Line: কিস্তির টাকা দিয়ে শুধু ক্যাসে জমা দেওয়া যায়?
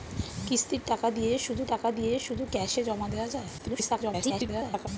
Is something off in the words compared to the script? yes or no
yes